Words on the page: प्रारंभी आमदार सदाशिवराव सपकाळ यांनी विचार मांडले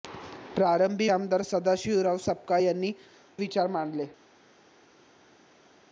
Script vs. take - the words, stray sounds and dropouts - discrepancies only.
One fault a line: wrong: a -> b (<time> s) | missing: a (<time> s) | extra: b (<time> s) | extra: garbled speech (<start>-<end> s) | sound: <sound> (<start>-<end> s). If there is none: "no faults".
no faults